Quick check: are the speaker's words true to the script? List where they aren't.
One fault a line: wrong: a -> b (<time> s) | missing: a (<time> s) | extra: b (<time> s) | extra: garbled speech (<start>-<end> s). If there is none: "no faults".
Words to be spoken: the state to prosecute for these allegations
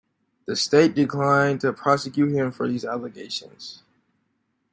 extra: declined (0.9 s)
extra: him (2.3 s)